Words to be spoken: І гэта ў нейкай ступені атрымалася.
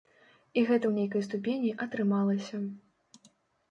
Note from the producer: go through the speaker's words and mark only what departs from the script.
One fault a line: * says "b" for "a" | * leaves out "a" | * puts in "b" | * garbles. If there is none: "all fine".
all fine